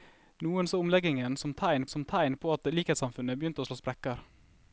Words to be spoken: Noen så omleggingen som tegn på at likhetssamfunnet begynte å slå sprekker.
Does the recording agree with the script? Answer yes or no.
no